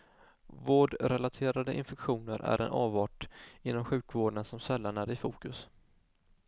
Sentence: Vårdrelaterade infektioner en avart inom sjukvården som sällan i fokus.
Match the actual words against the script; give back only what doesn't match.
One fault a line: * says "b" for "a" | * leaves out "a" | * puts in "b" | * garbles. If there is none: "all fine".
* puts in "är"
* puts in "är"